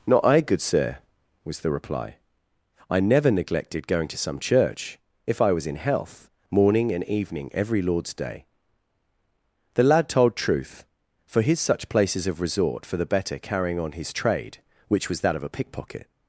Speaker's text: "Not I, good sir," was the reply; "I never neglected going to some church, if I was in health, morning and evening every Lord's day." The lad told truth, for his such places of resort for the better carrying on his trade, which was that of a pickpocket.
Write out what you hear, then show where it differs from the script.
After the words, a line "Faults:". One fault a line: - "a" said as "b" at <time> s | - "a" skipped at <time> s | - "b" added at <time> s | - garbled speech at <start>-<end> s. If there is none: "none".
"Not I, good sir," was the reply; "I never neglected going to some church, if I was in health, morning and evening every Lord's day." The lad told truth, for his such places of resort for the better carrying on his trade, which was that of a pickpocket.
Faults:
none